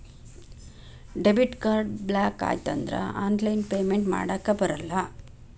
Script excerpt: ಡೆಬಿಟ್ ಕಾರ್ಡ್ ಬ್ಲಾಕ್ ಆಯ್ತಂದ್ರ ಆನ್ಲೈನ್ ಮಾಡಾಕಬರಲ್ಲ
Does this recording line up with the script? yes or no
no